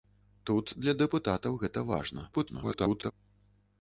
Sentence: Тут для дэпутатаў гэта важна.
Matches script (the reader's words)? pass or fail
fail